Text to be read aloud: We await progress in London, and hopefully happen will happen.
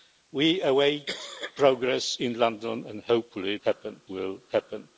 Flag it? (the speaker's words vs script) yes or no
no